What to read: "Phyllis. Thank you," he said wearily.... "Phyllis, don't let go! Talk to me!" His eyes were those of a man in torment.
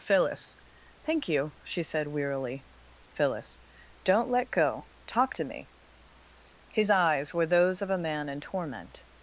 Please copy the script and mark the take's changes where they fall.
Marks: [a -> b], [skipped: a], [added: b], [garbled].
"Phyllis. Thank you," [he -> she] said wearily.... "Phyllis, don't let go! Talk to me!" His eyes were those of a man in torment.